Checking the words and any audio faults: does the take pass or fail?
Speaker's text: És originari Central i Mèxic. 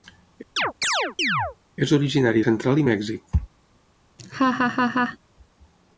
fail